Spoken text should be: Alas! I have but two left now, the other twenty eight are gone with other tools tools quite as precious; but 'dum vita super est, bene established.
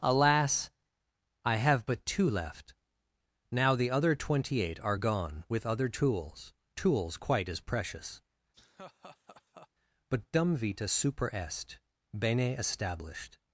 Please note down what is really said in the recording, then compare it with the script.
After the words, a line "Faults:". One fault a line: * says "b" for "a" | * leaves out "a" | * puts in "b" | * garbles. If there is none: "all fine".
Alas! I have but two left now, the other twenty eight are gone with other tools tools quite as precious; but 'dum vita super est, bene established.
Faults:
all fine